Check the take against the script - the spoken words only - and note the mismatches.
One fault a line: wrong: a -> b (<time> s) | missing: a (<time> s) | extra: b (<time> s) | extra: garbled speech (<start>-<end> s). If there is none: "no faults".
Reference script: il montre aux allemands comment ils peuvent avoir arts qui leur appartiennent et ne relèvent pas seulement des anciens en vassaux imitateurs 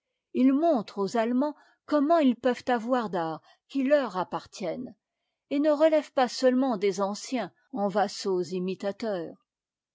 no faults